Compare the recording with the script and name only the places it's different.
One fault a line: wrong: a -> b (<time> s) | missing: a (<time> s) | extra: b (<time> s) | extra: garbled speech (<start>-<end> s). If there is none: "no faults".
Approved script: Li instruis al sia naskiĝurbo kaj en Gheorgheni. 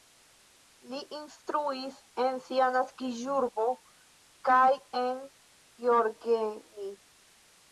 wrong: al -> en (2.2 s)